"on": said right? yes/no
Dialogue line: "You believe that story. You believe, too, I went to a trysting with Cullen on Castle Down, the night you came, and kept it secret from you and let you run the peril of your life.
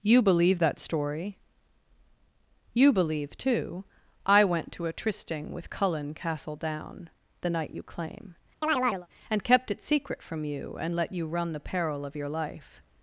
no